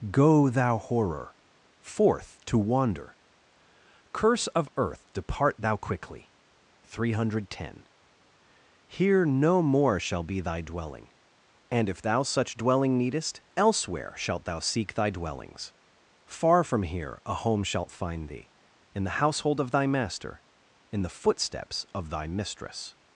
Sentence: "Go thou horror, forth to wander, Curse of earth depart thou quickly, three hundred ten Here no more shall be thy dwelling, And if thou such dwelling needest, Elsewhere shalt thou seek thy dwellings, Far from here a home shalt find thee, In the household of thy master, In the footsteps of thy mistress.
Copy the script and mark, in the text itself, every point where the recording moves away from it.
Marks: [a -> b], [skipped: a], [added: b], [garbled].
"Go thou horror, forth to wander, Curse of earth depart thou quickly, three hundred ten Here no more shall be thy dwelling, And if thou such dwelling needest, Elsewhere shalt thou seek thy dwellings, Far from here a home shalt find thee, In the household of thy master, In the footsteps of thy mistress.